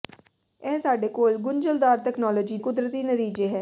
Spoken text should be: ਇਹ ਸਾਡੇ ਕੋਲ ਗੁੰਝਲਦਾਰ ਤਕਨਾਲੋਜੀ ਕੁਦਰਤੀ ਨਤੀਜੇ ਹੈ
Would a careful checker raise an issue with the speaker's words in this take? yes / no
no